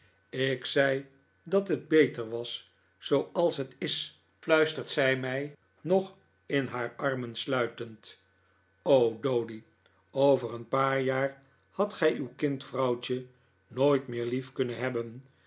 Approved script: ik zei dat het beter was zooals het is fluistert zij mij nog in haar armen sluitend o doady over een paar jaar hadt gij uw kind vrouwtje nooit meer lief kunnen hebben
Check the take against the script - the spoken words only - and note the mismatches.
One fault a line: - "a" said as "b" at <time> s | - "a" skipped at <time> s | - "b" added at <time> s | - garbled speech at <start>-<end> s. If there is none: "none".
none